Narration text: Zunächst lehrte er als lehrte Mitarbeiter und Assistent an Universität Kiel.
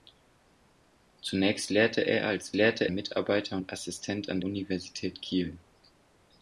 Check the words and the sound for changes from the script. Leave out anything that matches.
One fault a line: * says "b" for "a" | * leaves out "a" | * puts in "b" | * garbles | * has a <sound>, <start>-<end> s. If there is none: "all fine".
all fine